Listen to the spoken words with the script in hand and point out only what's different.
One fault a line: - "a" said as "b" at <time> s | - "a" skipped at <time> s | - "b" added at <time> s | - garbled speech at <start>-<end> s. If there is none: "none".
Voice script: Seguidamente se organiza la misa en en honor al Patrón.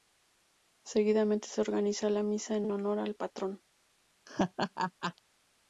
none